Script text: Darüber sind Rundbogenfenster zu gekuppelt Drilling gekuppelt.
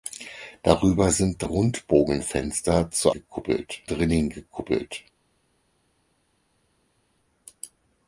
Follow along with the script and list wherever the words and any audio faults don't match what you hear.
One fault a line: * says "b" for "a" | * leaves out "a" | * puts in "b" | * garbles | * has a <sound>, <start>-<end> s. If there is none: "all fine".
all fine